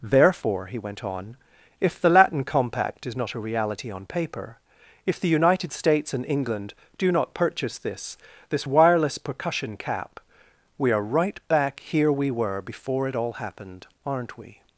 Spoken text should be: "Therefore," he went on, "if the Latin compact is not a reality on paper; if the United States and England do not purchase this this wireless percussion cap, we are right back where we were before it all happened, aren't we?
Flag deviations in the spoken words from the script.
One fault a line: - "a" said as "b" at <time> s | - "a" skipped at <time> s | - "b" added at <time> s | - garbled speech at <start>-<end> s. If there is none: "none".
- "where" said as "here" at 11.8 s